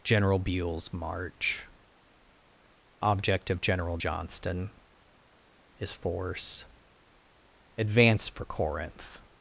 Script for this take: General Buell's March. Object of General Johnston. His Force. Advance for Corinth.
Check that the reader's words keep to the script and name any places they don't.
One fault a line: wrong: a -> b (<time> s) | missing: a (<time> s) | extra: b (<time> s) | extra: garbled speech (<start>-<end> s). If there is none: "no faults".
no faults